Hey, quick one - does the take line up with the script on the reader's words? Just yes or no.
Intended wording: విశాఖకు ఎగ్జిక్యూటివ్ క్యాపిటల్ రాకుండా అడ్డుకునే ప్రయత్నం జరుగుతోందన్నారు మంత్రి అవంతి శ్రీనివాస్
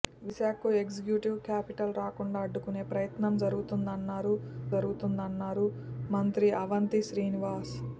no